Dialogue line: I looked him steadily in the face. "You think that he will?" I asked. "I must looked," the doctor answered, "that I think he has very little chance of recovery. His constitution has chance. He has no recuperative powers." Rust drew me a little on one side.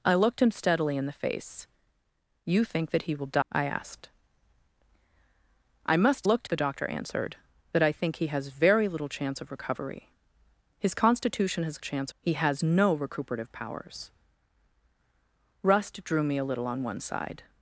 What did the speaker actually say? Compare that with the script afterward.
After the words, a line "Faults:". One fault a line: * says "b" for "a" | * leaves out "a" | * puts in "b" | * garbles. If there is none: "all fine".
I looked him steadily in the face. "You think that he will?" I asked. "I must looked," the doctor answered, "that I think he has very little chance of recovery. His constitution has chance. He has no recuperative powers." Rust drew me a little on one side.
Faults:
all fine